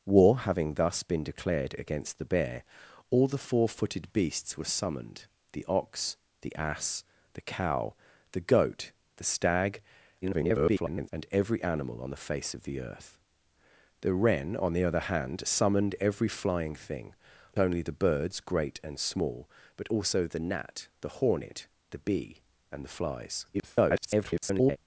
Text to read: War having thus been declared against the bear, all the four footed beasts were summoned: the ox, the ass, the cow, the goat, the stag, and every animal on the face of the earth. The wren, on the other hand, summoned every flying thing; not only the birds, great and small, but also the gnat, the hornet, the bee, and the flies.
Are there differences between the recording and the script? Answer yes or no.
yes